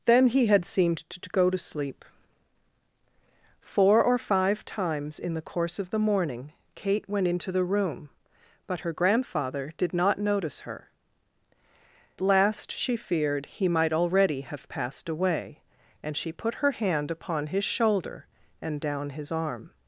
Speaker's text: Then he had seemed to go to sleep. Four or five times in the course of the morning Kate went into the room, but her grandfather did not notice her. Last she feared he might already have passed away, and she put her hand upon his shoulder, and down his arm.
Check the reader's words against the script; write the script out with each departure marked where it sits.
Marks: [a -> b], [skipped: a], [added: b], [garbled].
Then he had seemed to go to sleep. Four or five times in the course of the morning Kate went into the room, but her grandfather did not notice her. Last she feared he might already have passed away, and she put her hand upon his shoulder, and down his arm.